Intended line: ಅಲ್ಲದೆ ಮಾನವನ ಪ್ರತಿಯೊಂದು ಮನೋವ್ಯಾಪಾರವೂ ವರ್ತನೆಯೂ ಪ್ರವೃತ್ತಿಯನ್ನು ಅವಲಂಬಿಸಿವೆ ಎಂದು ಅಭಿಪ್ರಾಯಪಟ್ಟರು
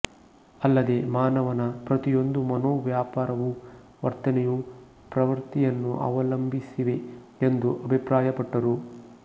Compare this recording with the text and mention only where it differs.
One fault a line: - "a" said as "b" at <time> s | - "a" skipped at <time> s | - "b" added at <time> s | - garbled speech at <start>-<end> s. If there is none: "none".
none